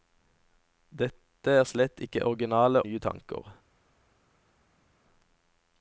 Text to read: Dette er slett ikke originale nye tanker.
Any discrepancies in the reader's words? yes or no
no